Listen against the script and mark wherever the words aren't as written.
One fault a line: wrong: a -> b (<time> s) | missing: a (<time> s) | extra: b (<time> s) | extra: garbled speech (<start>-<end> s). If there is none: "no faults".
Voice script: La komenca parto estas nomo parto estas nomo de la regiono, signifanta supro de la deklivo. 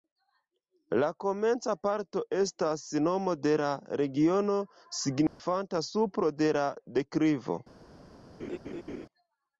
missing: parto estas nomo (3.4 s)